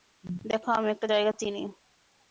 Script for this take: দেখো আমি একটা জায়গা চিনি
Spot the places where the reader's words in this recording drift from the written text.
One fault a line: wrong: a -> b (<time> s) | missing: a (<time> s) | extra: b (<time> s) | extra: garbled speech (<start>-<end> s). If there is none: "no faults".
no faults